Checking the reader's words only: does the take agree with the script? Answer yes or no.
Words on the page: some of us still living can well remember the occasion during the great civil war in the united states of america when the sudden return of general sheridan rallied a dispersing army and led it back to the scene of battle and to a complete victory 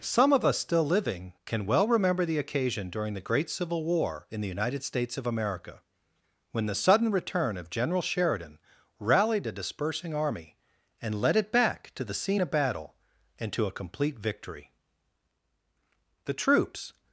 no